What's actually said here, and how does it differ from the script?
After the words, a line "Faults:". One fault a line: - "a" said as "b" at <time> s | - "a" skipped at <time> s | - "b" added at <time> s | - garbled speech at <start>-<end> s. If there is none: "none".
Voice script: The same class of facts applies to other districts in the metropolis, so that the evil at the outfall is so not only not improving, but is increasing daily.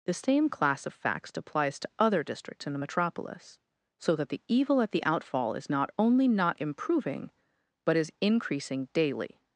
The same class of facts applies to other districts in the metropolis, so that the evil at the outfall is not only not improving, but is increasing daily.
Faults:
- "so" skipped at 5.7 s